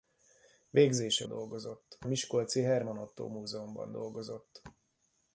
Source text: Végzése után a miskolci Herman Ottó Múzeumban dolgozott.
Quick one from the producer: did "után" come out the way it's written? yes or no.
no